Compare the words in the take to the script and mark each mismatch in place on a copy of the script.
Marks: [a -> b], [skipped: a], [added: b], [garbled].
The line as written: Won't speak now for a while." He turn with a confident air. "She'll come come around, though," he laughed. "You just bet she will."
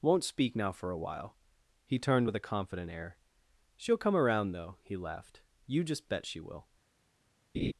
Won't speak now for a while." He [turn -> turned] with a confident air. "She'll come [skipped: come] around, though," he laughed. "You just bet she will."